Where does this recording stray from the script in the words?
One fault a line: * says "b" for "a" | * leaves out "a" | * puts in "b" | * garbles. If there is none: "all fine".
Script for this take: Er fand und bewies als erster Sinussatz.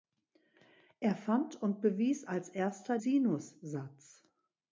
all fine